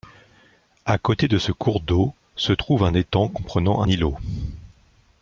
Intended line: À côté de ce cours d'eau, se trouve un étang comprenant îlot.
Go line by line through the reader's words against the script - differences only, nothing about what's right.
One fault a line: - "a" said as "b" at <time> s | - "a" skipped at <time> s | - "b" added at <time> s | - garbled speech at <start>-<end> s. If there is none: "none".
none